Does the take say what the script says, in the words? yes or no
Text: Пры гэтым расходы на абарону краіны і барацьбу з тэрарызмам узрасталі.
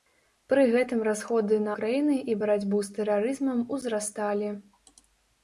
no